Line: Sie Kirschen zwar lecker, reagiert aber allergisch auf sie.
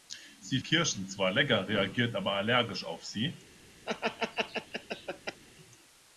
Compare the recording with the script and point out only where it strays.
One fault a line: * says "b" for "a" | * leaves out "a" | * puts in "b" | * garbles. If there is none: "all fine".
all fine